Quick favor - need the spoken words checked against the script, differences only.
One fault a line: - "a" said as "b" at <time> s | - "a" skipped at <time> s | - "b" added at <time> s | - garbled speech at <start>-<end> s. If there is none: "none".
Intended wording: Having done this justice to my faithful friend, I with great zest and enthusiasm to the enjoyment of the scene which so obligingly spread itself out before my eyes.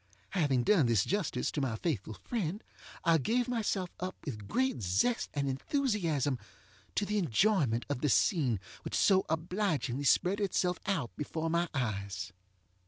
- "gave myself up" added at 3.2 s